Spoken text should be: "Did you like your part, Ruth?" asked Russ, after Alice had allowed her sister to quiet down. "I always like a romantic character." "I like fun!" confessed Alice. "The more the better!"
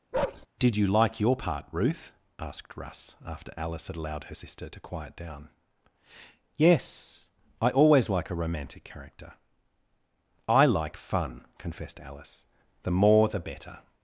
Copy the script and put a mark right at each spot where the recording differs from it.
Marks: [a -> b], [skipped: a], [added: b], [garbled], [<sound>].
[bark] "Did you like your part, Ruth?" asked Russ, after Alice had allowed her sister to quiet down. [added: Yes] "I always like a romantic character." "I like fun!" confessed Alice. "The more the better!"